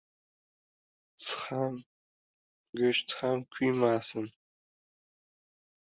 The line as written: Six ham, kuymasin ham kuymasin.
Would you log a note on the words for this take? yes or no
yes